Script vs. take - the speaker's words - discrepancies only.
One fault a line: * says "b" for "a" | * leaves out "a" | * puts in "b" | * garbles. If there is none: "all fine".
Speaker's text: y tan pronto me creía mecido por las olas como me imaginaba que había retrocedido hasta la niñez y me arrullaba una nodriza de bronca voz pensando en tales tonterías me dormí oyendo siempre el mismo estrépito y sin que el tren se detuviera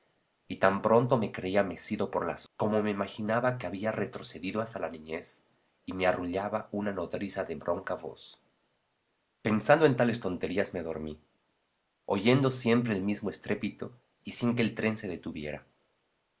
* leaves out "olas"